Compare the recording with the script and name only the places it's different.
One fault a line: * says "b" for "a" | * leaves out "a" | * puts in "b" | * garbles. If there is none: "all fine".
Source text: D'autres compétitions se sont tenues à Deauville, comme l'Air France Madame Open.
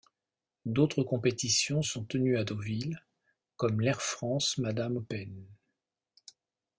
* leaves out "se"